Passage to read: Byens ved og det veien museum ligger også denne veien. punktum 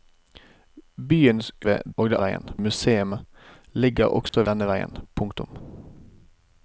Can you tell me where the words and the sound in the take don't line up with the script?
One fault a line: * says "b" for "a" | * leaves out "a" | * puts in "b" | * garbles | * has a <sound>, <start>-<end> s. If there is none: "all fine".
* has a dropout, 4.3-4.3 s